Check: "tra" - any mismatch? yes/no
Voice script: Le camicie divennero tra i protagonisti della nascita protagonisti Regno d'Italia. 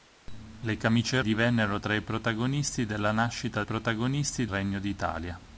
no